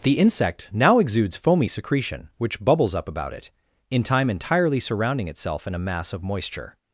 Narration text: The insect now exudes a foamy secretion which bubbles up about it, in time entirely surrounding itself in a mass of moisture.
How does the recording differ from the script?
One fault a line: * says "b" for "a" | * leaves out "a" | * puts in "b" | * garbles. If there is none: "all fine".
* leaves out "a"